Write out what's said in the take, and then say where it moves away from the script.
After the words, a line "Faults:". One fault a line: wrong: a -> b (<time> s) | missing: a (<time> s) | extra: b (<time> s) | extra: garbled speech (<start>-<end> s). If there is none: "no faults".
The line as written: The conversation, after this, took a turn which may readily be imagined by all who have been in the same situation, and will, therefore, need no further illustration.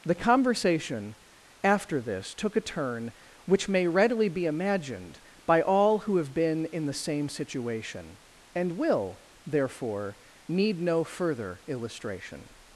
The conversation, after this, took a turn which may readily be imagined by all who have been in the same situation, and will, therefore, need no further illustration.
Faults:
no faults